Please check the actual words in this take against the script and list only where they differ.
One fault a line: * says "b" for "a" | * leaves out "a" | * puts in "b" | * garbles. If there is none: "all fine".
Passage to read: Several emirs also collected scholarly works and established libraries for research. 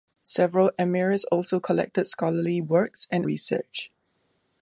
* leaves out "established libraries for"